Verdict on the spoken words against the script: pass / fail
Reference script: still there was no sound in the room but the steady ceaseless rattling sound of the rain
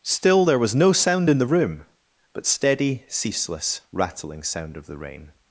fail